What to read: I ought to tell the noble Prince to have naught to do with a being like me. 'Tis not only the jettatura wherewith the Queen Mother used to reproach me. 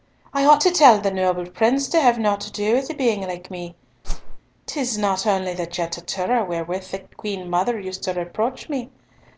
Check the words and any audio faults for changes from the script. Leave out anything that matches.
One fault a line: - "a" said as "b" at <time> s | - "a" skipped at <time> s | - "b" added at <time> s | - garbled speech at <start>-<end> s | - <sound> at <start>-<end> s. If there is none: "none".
- whoosh at 4.0-4.4 s